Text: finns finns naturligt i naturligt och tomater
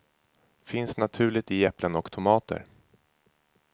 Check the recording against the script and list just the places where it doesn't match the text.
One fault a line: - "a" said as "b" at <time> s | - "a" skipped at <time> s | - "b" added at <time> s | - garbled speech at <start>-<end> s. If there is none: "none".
- "finns" skipped at 1.0 s
- "naturligt" said as "äpplen" at 1.6 s